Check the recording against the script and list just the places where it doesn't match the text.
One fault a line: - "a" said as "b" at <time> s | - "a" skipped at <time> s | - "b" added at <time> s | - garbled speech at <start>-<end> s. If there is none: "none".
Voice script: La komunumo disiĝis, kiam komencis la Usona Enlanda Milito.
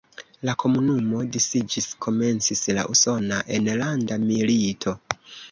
- "kiam" skipped at 1.9 s